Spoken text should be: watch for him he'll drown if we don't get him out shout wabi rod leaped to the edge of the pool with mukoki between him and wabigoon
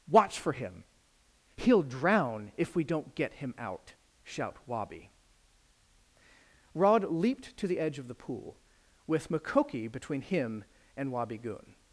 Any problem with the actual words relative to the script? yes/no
no